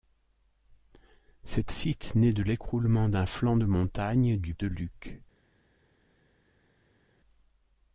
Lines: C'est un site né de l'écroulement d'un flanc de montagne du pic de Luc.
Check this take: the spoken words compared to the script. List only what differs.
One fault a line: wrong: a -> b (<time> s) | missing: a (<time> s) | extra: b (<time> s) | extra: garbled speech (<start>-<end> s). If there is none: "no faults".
missing: un (1.7 s)
missing: pic (4.6 s)